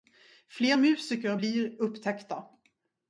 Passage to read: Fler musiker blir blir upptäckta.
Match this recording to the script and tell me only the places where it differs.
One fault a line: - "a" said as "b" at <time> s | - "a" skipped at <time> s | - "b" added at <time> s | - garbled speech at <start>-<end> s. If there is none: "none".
- "blir" skipped at 1.8 s